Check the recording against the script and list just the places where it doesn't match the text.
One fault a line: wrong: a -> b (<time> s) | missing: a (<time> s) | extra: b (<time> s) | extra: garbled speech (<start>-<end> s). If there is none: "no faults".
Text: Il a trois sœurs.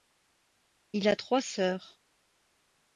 no faults